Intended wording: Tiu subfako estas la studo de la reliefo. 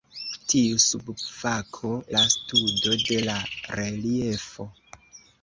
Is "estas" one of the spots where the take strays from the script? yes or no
yes